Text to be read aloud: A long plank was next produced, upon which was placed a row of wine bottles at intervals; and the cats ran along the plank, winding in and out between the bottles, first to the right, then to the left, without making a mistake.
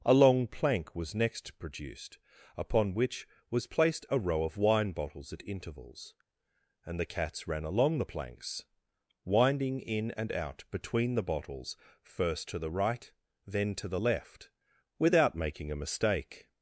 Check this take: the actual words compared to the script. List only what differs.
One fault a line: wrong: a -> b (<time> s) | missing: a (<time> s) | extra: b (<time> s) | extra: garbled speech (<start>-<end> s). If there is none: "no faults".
wrong: plank -> planks (8.0 s)